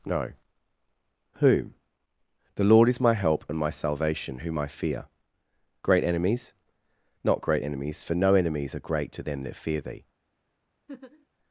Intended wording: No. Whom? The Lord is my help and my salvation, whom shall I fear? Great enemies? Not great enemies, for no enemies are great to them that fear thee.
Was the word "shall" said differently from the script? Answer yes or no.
yes